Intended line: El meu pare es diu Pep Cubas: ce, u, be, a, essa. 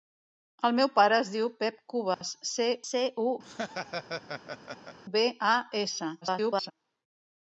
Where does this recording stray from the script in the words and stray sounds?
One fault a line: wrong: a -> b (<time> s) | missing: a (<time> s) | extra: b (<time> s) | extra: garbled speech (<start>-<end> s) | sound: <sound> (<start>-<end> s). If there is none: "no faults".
sound: dropout (2.1-2.2 s)
extra: ce (2.9 s)
sound: laugh (3.4-5.0 s)
extra: garbled speech (6.2-6.7 s)